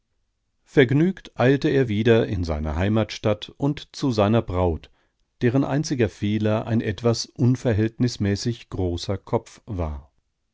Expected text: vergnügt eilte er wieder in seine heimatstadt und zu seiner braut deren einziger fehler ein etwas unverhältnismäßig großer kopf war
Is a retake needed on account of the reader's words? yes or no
no